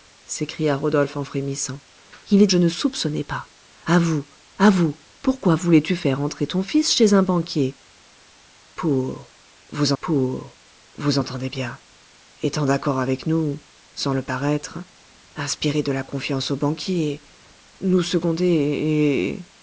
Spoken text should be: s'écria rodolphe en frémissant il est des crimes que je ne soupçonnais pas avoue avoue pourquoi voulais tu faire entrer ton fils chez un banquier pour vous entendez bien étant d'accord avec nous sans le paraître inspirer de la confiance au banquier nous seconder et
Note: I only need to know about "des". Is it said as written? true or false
false